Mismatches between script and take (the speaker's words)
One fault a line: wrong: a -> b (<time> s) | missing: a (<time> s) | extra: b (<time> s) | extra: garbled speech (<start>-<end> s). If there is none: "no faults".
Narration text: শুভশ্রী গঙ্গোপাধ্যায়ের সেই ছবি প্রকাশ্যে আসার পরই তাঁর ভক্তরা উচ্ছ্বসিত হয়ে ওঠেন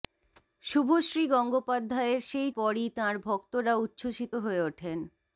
missing: ছবি প্রকাশ্যে আসার (2.5 s)